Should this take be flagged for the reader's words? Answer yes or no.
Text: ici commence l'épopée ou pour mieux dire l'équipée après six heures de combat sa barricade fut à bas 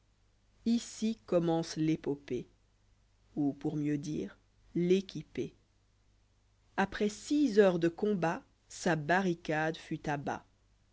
no